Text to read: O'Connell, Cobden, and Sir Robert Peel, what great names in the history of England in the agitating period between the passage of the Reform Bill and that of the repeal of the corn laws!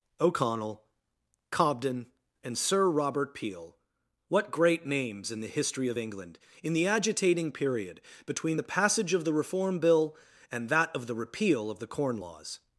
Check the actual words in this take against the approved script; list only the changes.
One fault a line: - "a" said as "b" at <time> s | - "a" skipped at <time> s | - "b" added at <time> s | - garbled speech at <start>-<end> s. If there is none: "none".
none